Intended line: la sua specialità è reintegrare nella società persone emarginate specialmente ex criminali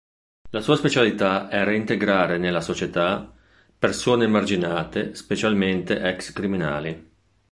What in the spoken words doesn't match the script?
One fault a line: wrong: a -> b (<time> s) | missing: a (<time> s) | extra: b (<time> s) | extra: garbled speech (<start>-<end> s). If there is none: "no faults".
no faults